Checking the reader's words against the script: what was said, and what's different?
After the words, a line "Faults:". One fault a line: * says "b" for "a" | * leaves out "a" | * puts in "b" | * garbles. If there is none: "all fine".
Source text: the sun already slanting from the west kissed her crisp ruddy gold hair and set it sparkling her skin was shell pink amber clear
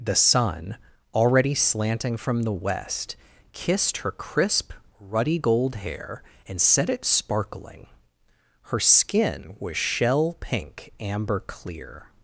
the sun already slanting from the west kissed her crisp ruddy gold hair and set it sparkling her skin was shell pink amber clear
Faults:
all fine